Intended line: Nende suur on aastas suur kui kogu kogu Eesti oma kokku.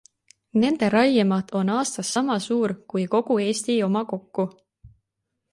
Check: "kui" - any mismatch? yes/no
no